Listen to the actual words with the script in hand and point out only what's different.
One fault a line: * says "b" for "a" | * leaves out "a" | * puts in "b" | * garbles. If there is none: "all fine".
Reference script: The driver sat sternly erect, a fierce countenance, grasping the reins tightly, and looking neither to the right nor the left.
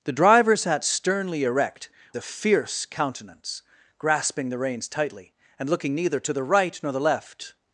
all fine